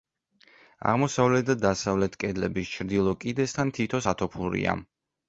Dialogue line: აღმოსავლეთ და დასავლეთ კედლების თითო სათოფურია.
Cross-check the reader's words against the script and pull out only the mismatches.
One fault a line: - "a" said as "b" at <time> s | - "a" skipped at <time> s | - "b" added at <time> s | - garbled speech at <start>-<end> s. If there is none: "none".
- "ჩრდილო კიდესთან" added at 2.8 s